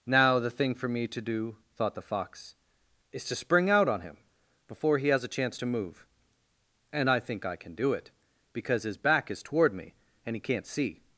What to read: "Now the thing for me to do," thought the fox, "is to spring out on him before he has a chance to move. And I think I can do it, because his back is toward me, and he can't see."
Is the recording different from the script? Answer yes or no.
no